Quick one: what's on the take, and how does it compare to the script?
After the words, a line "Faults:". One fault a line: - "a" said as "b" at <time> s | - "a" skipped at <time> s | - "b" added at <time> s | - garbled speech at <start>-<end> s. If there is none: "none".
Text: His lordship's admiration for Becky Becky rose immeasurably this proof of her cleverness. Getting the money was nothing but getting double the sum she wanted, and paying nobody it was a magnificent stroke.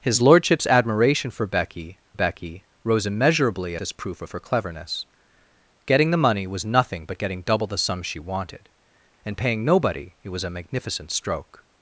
His lordship's admiration for Becky Becky rose immeasurably this proof of her cleverness. Getting the money was nothing but getting double the sum she wanted, and paying nobody it was a magnificent stroke.
Faults:
none